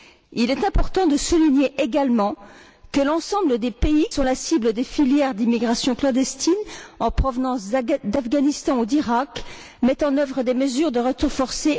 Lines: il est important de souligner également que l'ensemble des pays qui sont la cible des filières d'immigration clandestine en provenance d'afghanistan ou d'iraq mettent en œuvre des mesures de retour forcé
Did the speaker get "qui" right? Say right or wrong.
wrong